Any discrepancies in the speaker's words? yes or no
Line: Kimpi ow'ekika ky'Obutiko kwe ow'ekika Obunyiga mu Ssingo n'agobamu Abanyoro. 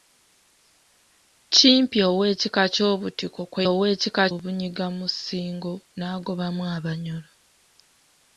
no